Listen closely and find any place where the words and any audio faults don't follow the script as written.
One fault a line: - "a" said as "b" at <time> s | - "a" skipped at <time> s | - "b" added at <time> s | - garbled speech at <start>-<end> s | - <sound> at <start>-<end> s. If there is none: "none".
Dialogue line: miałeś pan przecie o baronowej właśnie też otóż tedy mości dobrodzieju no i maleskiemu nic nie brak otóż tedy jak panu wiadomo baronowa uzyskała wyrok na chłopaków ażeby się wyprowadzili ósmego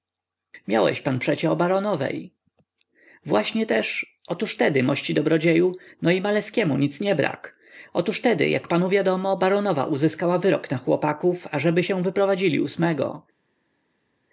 none